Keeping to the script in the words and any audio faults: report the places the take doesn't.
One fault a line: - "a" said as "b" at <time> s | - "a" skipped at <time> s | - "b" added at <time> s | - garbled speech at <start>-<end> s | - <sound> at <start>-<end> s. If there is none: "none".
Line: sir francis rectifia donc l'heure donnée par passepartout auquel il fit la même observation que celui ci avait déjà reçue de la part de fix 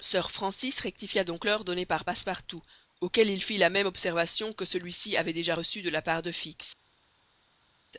none